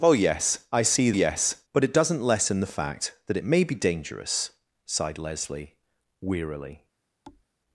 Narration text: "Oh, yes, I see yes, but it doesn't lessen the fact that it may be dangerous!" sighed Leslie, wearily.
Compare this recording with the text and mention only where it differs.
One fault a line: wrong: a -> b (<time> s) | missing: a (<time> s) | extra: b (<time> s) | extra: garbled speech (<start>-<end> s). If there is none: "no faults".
no faults